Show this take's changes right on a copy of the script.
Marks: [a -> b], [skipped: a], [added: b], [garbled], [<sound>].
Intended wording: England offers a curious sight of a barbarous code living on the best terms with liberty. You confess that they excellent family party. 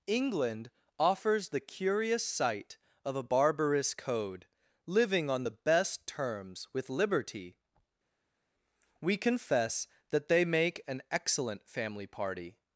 England offers [a -> the] curious sight of a barbarous code living on the best terms with liberty. [You -> We] confess that they [added: make an] excellent family party.